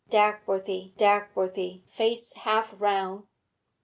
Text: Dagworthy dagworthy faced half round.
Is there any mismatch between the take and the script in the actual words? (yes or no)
no